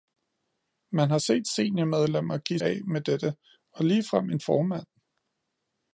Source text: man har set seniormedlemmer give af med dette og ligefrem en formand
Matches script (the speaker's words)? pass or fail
pass